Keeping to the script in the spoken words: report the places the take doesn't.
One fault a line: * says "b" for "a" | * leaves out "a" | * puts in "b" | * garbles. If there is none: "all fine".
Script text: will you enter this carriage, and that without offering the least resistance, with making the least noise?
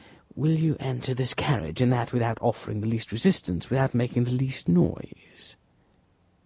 * says "without" for "with"